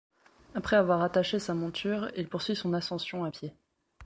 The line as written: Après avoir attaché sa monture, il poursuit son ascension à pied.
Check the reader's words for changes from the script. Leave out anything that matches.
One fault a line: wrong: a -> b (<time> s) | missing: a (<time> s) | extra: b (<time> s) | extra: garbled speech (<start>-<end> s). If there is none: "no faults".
no faults